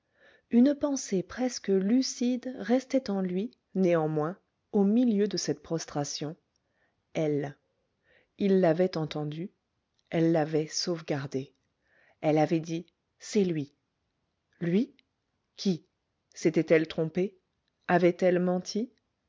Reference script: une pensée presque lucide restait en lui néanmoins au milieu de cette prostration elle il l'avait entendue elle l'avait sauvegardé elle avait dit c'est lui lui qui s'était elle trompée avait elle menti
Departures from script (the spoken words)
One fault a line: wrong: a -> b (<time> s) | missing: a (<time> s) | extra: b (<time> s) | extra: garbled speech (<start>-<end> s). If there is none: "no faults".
no faults